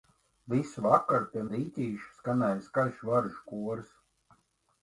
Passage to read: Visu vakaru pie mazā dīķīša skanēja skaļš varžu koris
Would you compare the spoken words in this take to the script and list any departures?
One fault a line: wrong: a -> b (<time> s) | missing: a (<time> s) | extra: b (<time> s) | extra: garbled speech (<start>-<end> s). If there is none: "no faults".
missing: mazā (1.4 s)